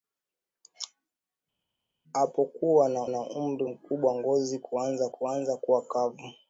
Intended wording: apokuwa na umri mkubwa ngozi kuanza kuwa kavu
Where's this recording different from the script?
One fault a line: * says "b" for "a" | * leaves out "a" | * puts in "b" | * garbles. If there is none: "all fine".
* puts in "na"
* puts in "kuanza"